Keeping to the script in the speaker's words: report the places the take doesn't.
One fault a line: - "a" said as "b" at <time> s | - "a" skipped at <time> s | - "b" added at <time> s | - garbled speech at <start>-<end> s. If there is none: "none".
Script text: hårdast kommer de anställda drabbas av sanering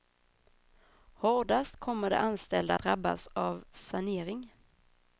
none